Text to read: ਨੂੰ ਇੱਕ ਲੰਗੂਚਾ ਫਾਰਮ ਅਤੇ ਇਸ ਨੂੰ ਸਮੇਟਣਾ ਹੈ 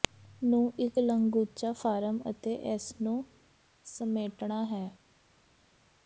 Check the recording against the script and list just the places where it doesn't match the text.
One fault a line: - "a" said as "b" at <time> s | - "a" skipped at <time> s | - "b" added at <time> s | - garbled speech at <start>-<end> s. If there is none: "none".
none